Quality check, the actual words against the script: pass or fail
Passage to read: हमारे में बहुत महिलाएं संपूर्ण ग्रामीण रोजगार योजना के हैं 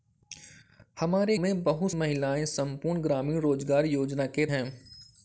pass